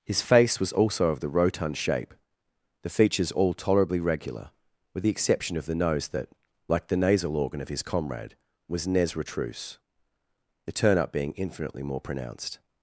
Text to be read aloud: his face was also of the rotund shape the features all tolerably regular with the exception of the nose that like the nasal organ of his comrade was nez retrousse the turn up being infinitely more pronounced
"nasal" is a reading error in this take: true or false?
false